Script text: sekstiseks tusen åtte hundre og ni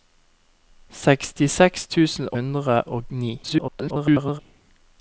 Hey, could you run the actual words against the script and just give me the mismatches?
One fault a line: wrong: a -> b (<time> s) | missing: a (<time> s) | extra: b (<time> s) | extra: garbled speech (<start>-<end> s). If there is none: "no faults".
missing: åtte (2.3 s)
extra: garbled speech (3.4-4.4 s)